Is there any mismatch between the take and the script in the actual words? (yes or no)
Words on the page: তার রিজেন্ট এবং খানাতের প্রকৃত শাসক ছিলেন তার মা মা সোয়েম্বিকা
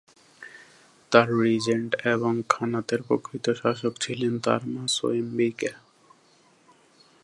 yes